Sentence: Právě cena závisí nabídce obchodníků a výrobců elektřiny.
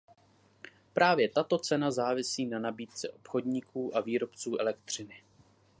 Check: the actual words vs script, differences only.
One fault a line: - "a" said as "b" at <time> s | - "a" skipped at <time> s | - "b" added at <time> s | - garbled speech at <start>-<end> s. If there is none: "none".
- "tato" added at 1.3 s
- "na" added at 2.5 s